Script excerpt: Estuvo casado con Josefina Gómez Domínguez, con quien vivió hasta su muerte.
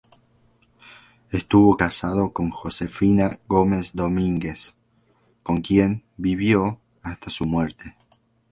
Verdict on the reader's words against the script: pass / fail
pass